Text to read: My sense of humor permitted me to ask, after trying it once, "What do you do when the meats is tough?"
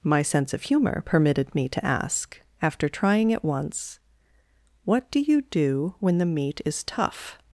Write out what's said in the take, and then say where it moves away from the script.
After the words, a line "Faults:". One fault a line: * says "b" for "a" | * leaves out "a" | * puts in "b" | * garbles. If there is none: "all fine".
My sense of humor permitted me to ask, after trying it once, "What do you do when the meat is tough?"
Faults:
* says "meat" for "meats"